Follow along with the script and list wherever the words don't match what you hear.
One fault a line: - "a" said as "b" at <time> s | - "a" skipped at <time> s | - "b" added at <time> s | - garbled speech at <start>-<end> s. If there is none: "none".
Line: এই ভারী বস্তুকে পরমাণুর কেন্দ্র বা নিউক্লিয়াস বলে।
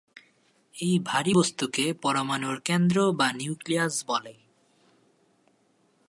none